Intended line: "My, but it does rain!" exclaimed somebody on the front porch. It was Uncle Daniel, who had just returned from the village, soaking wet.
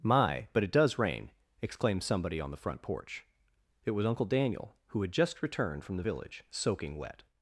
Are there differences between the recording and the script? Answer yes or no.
no